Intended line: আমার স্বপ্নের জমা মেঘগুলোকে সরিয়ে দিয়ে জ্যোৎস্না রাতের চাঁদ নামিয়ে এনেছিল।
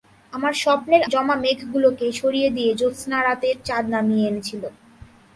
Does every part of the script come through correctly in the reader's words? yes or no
yes